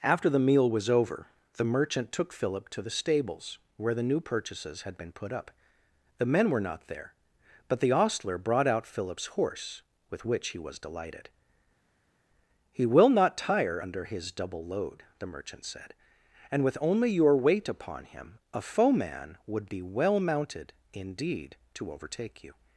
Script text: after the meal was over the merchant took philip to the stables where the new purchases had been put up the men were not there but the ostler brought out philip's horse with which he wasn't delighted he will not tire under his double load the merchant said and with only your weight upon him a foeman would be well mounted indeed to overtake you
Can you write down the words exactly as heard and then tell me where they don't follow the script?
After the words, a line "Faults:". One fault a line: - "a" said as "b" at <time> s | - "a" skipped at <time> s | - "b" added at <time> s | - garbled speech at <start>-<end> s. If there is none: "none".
after the meal was over the merchant took philip to the stables where the new purchases had been put up the men were not there but the ostler brought out philip's horse with which he was delighted he will not tire under his double load the merchant said and with only your weight upon him a foeman would be well mounted indeed to overtake you
Faults:
- "wasn't" said as "was" at 10.6 s